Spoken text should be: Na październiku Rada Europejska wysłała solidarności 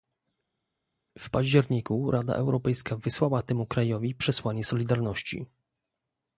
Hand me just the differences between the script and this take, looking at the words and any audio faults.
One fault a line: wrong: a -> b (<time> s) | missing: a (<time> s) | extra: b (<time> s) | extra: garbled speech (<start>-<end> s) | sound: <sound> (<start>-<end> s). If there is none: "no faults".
wrong: Na -> W (1.2 s)
extra: temu krajowi przesłanie (3.4 s)